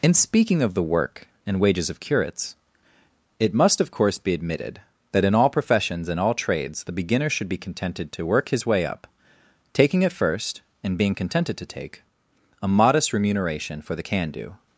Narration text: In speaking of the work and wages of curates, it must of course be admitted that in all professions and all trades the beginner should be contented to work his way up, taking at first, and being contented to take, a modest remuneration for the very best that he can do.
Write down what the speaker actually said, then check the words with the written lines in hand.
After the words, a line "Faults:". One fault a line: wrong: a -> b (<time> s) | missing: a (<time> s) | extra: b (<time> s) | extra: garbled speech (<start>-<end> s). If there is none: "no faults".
In speaking of the work and wages of curates, it must of course be admitted that in all professions and all trades the beginner should be contented to work his way up, taking at first, and being contented to take, a modest remuneration for the can do.
Faults:
missing: very best that he (14.0 s)